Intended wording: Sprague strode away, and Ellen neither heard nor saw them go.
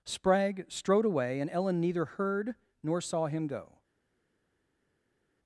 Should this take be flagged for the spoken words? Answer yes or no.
yes